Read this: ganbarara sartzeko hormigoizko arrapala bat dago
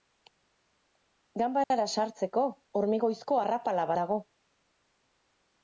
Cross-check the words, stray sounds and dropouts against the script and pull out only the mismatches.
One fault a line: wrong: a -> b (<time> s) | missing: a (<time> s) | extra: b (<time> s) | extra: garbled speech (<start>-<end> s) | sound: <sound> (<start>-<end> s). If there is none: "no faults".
sound: dropout (1.6-1.7 s)
missing: bat (3.9 s)